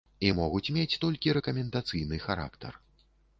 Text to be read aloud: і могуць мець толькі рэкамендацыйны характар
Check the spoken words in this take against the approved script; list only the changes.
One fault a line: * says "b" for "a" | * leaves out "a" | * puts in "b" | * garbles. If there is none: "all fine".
all fine